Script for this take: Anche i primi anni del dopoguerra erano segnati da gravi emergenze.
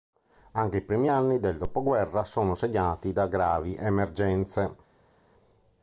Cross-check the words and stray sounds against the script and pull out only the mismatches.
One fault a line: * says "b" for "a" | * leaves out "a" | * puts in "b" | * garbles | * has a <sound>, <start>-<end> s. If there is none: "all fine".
* says "sono" for "erano"